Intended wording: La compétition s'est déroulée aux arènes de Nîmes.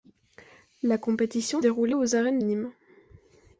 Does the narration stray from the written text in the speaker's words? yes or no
yes